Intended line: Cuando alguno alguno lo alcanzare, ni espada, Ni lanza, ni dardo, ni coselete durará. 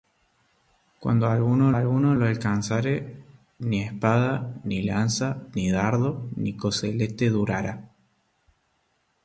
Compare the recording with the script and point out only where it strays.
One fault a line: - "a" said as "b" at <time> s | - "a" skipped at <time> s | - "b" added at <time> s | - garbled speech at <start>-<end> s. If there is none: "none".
none